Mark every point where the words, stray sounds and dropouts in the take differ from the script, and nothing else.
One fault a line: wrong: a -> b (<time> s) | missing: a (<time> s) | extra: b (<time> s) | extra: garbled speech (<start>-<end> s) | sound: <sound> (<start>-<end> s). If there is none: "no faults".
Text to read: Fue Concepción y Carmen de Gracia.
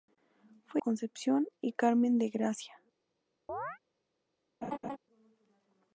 sound: chirp (3.5-3.8 s)
sound: laugh (4.6-5.0 s)